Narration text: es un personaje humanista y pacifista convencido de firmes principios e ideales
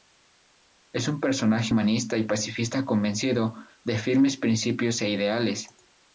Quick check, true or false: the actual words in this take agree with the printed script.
true